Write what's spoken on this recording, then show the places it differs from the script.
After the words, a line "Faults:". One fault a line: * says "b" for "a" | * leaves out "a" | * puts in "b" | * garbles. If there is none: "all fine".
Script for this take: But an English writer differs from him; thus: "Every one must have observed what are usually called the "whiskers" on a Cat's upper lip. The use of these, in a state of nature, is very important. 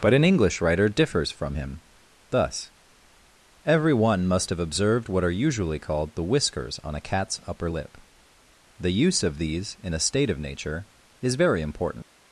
But an English writer differs from him; thus: "Every one must have observed what are usually called the "whiskers" on a Cat's upper lip. The use of these, in a state of nature, is very important.
Faults:
all fine